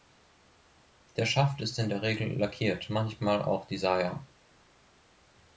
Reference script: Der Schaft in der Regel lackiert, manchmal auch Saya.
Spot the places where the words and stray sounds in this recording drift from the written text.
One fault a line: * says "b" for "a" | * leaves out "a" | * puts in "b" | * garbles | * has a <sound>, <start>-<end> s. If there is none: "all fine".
* puts in "ist"
* puts in "die"